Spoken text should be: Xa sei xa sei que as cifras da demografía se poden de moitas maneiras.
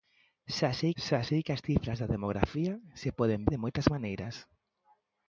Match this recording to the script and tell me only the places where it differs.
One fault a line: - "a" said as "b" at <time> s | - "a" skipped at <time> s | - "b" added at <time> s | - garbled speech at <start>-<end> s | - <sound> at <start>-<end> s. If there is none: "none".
none